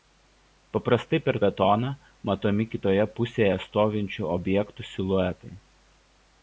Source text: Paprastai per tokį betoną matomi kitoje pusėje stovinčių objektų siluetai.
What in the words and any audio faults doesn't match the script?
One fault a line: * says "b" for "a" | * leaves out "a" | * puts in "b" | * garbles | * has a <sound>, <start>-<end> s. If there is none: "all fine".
* leaves out "tokį"